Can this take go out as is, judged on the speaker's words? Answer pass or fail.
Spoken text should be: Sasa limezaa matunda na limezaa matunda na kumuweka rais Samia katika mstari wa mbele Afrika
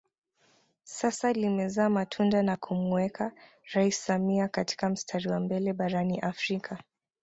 fail